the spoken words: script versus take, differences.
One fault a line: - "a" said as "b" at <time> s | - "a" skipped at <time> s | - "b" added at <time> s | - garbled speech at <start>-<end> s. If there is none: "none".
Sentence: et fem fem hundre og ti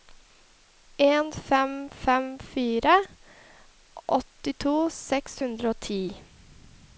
- "et" said as "en" at 1.1 s
- "fire åttito seks" added at 2.5 s